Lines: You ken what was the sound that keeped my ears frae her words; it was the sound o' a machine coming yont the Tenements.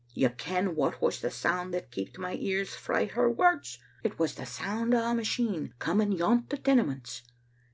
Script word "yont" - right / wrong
right